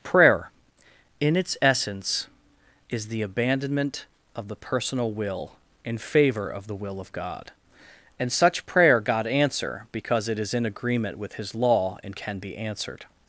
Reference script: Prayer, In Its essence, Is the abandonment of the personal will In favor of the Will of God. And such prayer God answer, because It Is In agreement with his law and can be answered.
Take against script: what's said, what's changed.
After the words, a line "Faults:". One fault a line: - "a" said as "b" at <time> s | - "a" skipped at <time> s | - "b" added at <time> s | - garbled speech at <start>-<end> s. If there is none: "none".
Prayer, In Its essence, Is the abandonment of the personal will In favor of the Will of God. And such prayer God answer, because It Is In agreement with his law and can be answered.
Faults:
none